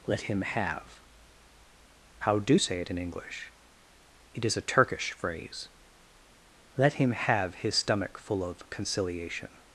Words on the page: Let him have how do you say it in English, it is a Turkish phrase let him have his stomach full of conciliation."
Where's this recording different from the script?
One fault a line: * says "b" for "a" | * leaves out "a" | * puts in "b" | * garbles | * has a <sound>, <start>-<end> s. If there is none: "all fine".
* leaves out "you"